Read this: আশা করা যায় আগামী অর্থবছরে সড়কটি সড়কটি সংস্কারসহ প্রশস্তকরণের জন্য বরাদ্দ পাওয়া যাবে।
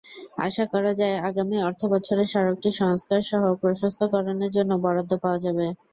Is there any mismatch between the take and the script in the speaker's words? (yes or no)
yes